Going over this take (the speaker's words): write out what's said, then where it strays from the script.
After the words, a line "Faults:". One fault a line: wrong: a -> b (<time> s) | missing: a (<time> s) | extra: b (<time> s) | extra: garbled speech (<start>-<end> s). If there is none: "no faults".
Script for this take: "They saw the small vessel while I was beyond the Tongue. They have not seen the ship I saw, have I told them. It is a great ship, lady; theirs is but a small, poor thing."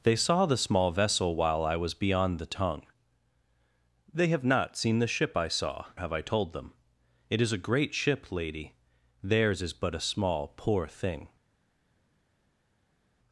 "They saw the small vessel while I was beyond the Tongue. They have not seen the ship I saw, have I told them. It is a great ship, lady; theirs is but a small, poor thing."
Faults:
no faults